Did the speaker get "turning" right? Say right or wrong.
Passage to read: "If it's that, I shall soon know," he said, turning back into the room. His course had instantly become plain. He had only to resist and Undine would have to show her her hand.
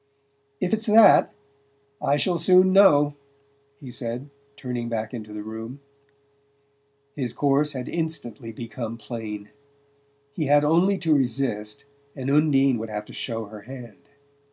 right